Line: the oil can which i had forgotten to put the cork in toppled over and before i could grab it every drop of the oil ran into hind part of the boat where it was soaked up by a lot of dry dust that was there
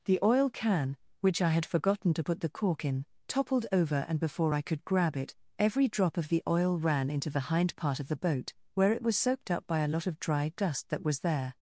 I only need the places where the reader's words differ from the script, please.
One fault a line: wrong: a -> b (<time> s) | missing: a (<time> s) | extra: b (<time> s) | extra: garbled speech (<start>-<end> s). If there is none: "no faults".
extra: the (7.3 s)